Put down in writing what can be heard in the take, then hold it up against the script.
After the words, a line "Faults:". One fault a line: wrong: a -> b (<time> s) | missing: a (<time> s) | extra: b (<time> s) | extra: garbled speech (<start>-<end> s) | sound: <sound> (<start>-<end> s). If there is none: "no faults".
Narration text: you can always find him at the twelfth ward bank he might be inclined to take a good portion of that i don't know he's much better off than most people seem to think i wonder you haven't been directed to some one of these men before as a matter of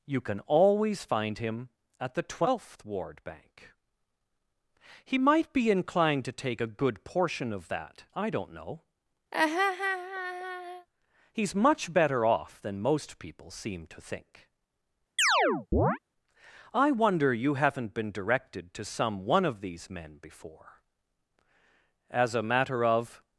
you can always find him at the twelfth ward bank he might be inclined to take a good portion of that i don't know he's much better off than most people seem to think i wonder you haven't been directed to some one of these men before as a matter of
Faults:
sound: laugh (9.3-10.9 s)
sound: chirp (15.2-16.0 s)